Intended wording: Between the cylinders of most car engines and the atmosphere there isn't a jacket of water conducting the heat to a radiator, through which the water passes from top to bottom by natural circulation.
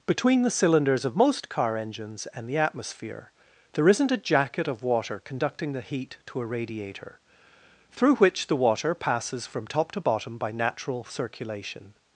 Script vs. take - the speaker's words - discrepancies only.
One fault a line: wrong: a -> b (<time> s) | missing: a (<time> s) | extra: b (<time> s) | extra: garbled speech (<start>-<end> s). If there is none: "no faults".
no faults